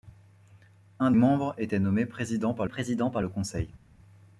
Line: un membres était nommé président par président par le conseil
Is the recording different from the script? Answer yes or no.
no